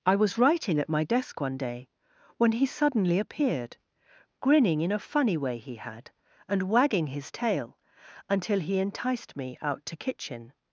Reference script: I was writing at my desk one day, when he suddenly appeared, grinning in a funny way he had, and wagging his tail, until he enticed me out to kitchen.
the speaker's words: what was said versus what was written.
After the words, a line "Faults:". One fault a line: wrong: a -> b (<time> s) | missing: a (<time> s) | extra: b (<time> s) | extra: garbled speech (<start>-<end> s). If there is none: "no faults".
I was writing at my desk one day, when he suddenly appeared, grinning in a funny way he had, and wagging his tail, until he enticed me out to kitchen.
Faults:
no faults